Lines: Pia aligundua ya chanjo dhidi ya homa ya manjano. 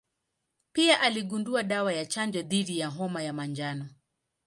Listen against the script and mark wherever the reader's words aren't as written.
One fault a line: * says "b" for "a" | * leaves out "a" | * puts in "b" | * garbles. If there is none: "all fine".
* puts in "dawa"